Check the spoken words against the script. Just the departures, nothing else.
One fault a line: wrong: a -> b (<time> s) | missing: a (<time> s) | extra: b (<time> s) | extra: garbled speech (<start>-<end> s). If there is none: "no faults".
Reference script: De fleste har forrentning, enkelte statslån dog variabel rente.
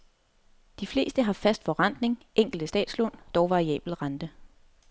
extra: fast (1.3 s)